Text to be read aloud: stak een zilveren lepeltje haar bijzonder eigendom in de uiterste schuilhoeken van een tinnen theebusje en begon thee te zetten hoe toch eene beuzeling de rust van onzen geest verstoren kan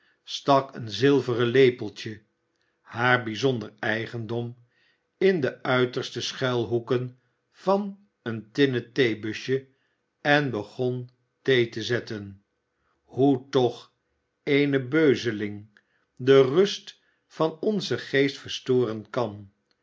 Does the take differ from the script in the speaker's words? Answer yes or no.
no